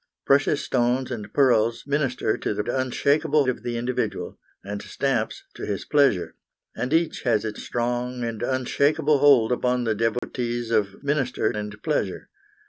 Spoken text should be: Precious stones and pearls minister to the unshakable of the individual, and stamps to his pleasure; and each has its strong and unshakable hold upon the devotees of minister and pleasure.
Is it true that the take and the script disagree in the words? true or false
false